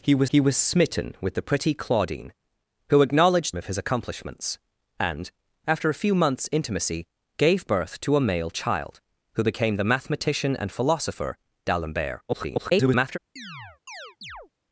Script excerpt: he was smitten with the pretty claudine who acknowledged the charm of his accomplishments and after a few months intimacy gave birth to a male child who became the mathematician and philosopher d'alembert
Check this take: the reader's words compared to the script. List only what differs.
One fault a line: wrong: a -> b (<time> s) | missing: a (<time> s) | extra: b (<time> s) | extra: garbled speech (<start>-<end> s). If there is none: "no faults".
extra: he was (0.3 s)
missing: the charm (3.5 s)
extra: garbled speech (12.3-13.2 s)